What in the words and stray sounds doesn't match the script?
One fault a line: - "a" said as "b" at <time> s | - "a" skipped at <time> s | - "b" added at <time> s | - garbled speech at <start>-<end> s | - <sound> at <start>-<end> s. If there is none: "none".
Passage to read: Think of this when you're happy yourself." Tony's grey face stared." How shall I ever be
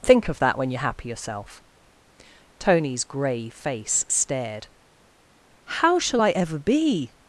- "this" said as "that" at 0.4 s